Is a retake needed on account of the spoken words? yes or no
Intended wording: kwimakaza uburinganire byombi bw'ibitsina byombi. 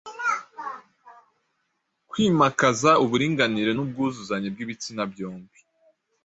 yes